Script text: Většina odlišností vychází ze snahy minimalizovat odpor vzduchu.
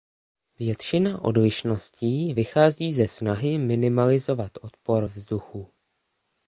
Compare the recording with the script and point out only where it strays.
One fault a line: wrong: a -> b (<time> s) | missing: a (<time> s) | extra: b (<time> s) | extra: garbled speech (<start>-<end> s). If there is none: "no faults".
no faults